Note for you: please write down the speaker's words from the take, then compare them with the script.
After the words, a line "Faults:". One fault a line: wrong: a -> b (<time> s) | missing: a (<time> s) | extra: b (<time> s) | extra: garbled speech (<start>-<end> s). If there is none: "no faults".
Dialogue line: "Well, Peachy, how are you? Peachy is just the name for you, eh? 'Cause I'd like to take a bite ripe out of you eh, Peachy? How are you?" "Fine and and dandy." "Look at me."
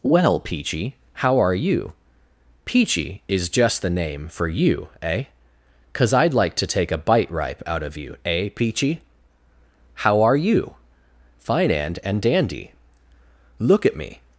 "Well, Peachy, how are you? Peachy is just the name for you, eh? 'Cause I'd like to take a bite ripe out of you eh, Peachy? How are you?" "Fine and and dandy." "Look at me."
Faults:
no faults